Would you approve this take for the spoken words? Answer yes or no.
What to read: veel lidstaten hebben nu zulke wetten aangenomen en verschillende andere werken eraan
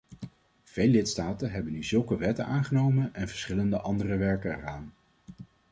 yes